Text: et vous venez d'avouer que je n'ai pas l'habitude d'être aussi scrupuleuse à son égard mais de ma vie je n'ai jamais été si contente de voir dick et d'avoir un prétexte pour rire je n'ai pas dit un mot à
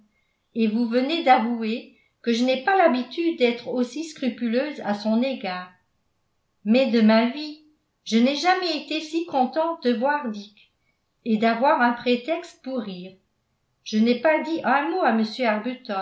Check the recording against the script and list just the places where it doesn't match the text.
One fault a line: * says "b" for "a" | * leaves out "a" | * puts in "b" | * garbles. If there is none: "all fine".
all fine